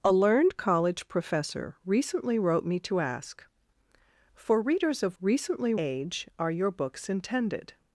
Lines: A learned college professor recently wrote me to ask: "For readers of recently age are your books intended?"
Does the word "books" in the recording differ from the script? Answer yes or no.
no